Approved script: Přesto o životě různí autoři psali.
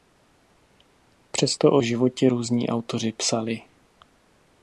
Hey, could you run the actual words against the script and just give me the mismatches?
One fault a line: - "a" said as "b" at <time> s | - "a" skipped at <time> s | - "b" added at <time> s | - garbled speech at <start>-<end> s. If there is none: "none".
none